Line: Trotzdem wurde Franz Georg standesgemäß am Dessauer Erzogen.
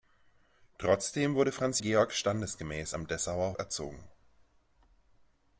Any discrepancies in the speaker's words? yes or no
no